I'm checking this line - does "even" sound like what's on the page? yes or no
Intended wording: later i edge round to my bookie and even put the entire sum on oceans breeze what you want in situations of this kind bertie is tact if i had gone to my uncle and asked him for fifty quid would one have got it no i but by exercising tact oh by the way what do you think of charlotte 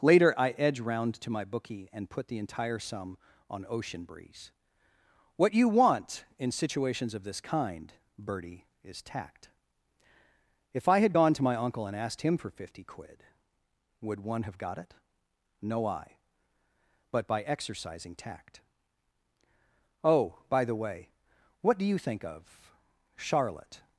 no